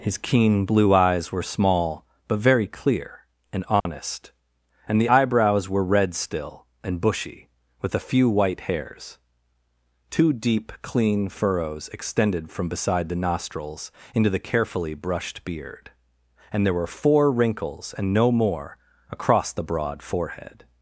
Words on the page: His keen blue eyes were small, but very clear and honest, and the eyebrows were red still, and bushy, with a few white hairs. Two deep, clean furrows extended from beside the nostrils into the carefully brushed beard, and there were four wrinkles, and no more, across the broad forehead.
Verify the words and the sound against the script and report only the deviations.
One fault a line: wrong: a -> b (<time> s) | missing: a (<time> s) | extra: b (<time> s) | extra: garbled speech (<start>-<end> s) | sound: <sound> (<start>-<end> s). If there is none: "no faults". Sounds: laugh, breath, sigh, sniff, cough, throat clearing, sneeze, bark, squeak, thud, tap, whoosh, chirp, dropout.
sound: dropout (3.8-3.9 s)